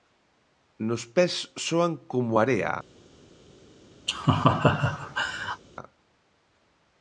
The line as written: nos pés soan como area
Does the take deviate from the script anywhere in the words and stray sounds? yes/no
yes